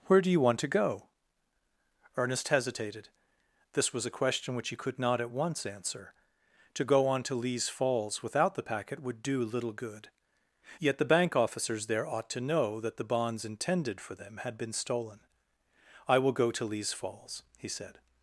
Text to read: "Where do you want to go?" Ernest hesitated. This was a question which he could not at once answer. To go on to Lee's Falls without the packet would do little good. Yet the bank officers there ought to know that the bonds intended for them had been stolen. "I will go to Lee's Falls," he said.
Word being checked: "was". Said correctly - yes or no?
yes